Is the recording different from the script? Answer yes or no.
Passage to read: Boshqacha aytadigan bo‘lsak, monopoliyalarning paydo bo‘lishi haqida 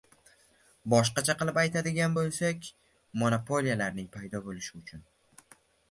yes